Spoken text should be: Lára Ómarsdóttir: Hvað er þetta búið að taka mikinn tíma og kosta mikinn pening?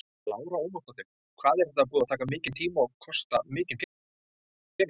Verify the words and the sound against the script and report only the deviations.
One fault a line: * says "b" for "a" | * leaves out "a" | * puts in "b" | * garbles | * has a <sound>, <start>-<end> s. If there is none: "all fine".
all fine